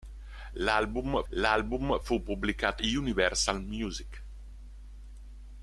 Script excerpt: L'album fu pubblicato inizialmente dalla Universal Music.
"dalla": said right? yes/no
no